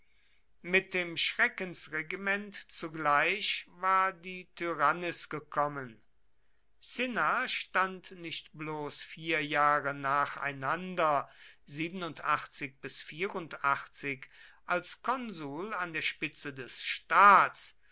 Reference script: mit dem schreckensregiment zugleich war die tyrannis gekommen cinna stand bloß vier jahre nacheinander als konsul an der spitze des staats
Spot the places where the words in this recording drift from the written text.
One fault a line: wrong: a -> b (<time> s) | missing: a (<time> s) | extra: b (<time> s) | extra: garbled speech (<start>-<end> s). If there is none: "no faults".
extra: nicht (8.1 s)